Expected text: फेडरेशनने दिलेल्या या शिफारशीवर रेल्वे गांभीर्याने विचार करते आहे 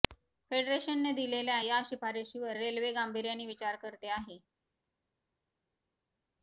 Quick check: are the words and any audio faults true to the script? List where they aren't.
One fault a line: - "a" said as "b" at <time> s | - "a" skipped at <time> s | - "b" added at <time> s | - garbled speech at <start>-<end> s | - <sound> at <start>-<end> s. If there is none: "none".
none